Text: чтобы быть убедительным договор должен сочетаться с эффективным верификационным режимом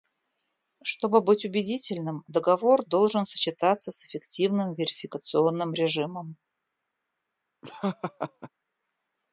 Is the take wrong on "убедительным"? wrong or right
right